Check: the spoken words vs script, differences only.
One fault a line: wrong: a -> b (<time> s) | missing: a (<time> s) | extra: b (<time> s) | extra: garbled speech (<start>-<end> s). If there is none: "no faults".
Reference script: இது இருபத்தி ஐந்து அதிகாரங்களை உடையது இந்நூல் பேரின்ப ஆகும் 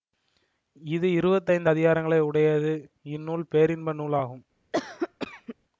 extra: நூல் (3.9 s)